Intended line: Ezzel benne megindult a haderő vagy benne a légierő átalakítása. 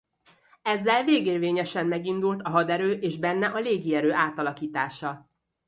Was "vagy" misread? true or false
true